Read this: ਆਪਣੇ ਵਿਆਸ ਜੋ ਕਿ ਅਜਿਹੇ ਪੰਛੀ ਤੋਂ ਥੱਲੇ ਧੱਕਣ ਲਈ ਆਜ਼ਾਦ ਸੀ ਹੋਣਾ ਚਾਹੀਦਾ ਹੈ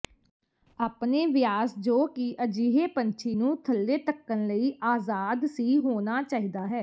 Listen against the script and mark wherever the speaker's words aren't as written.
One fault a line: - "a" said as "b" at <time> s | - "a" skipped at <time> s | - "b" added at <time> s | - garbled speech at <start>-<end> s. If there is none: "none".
- "ਤੋਂ" said as "ਨੂੰ" at 3.3 s